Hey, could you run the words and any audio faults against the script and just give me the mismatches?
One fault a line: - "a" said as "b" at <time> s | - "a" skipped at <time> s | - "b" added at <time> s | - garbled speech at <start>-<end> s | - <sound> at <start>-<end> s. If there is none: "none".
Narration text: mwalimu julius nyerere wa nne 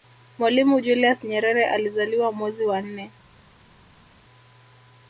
- "alizaliwa mwezi" added at 1.7 s